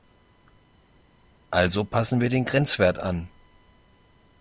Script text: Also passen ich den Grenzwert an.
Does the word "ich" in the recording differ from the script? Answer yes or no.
yes